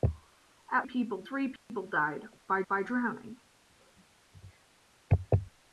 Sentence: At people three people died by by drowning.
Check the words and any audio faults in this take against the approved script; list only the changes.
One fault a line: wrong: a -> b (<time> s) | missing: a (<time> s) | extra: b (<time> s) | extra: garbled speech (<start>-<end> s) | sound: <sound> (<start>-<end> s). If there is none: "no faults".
sound: dropout (1.6-1.7 s)